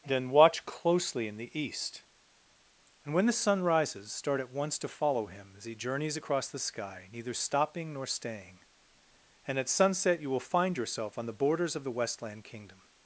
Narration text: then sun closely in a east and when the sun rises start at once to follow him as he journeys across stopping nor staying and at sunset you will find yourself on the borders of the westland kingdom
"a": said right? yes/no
no